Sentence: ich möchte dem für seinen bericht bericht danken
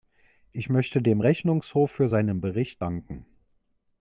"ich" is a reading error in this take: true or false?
false